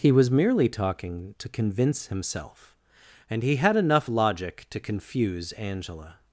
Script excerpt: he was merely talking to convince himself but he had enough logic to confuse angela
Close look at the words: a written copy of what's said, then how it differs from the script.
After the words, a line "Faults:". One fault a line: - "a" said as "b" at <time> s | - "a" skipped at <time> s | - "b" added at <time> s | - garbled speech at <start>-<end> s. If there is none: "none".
he was merely talking to convince himself and he had enough logic to confuse angela
Faults:
- "but" said as "and" at 3.3 s